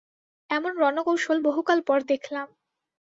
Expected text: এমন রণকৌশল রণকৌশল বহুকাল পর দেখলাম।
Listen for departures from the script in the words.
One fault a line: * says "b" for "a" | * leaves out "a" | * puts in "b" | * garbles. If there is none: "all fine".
* leaves out "রণকৌশল"